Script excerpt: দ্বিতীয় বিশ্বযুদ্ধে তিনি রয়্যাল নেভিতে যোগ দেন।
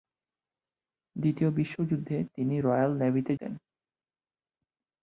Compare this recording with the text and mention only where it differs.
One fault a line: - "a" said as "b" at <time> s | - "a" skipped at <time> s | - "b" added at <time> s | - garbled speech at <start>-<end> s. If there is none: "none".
- "যোগ" skipped at 3.3 s